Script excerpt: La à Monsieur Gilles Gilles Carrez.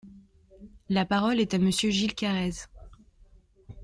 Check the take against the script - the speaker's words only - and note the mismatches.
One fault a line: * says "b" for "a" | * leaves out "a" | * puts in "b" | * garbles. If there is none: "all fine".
* puts in "parole est"
* leaves out "Gilles"